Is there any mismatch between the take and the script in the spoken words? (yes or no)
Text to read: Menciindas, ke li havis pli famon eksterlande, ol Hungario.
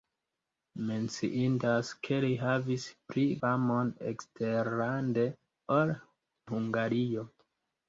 no